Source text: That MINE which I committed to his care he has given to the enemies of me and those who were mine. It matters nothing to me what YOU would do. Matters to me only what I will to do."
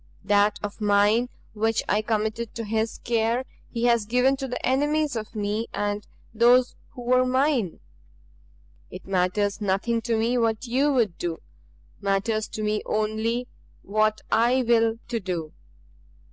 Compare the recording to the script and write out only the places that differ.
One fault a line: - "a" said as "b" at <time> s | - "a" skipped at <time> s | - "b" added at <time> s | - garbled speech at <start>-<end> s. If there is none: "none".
- "of" added at 0.6 s